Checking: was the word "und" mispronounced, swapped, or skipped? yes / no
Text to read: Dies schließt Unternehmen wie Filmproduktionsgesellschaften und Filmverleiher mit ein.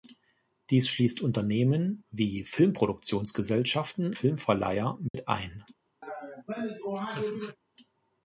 yes